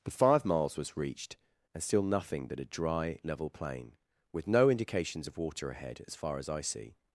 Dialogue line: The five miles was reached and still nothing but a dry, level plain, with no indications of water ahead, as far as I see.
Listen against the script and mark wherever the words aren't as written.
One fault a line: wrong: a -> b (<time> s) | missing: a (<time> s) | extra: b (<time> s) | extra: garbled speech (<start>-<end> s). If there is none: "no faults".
no faults